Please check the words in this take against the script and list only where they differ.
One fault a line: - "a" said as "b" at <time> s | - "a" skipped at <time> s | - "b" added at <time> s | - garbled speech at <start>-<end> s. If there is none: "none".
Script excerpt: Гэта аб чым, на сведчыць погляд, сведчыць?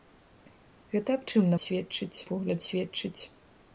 none